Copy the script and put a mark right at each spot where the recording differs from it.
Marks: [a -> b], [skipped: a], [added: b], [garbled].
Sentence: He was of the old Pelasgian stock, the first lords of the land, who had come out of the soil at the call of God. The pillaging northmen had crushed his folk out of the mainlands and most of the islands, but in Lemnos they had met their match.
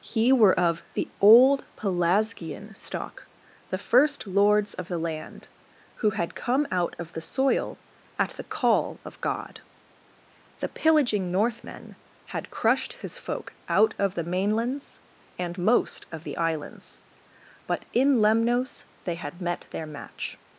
He [was -> were] of the old Pelasgian stock, the first lords of the land, who had come out of the soil at the call of God. The pillaging northmen had crushed his folk out of the mainlands and most of the islands, but in Lemnos they had met their match.